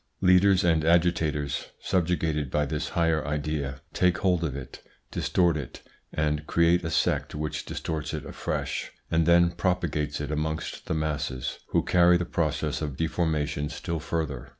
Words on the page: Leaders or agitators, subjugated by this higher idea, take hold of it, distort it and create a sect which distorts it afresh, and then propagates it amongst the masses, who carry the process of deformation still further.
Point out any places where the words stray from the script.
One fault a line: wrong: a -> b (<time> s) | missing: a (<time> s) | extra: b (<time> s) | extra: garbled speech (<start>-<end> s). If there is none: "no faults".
wrong: or -> and (0.6 s)